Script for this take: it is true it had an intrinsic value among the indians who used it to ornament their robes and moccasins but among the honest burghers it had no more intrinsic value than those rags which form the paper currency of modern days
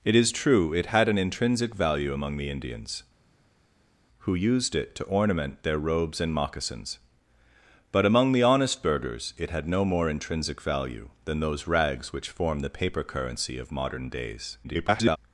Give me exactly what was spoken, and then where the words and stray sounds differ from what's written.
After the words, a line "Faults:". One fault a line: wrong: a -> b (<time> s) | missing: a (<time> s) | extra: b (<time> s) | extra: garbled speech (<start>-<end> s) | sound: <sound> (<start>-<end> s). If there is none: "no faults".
it is true it had an intrinsic value among the indians who used it to ornament their robes and moccasins but among the honest burghers it had no more intrinsic value than those rags which form the paper currency of modern days [garbled]
Faults:
extra: garbled speech (14.6-15.2 s)